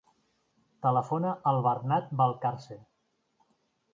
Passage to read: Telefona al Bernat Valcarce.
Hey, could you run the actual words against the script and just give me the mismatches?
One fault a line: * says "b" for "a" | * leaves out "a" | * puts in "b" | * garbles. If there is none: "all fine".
all fine